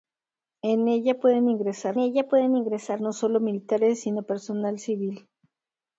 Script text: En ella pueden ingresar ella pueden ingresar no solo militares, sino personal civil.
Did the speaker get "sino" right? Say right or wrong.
right